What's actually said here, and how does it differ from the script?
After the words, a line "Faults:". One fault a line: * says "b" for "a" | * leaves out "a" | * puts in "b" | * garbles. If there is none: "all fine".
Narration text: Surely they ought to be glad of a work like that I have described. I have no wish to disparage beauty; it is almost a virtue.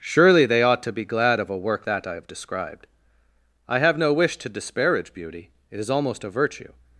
Surely they ought to be glad of a work that I have described. I have no wish to disparage beauty; it is almost a virtue.
Faults:
* leaves out "like"